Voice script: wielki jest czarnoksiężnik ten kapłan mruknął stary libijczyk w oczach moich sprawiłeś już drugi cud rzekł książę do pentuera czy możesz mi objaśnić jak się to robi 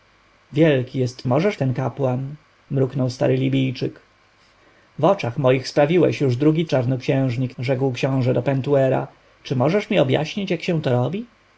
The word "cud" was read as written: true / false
false